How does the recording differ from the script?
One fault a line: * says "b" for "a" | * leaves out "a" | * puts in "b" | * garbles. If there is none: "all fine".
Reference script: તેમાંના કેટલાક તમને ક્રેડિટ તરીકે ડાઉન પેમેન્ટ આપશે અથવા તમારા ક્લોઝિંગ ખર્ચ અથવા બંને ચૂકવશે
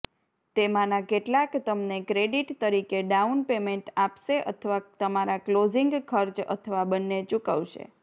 all fine